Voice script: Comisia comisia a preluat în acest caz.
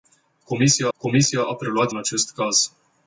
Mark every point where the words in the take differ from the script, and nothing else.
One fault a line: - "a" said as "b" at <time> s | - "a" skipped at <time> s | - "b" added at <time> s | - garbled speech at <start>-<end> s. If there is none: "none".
none